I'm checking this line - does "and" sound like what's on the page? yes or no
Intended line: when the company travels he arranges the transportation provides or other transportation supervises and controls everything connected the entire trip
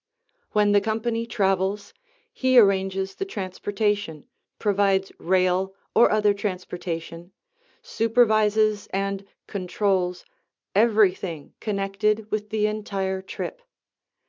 yes